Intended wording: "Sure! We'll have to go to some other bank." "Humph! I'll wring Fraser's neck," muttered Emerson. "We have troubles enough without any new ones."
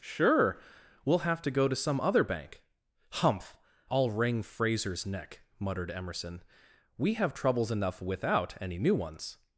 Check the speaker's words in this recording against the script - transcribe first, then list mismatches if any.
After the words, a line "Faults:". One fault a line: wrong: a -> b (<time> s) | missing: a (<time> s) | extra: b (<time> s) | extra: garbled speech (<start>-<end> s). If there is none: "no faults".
"Sure! We'll have to go to some other bank." "Humph! I'll wring Fraser's neck," muttered Emerson. "We have troubles enough without any new ones."
Faults:
no faults